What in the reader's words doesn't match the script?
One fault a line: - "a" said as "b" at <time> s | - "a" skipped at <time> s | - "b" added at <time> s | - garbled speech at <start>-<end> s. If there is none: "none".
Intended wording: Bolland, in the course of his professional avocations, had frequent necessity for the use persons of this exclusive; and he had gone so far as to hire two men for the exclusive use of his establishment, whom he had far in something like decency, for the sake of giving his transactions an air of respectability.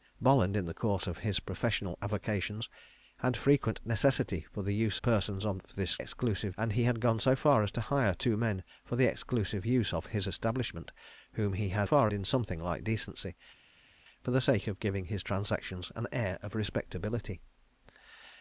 none